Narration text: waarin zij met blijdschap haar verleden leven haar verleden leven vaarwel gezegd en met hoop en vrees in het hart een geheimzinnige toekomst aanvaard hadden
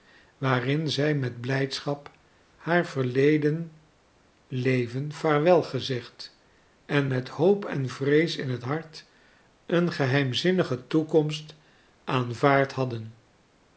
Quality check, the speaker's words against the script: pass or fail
fail